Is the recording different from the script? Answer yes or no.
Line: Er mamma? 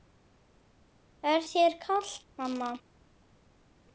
yes